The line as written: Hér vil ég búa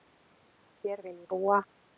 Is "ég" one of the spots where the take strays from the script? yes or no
no